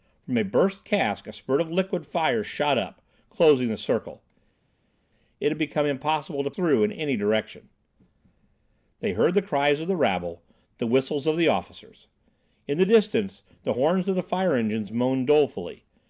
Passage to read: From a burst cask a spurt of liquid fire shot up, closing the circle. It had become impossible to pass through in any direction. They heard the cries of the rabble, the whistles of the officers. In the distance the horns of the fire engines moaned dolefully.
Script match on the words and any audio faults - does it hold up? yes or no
no